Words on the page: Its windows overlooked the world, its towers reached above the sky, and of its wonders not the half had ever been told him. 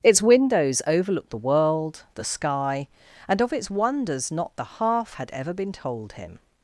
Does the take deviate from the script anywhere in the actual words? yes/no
yes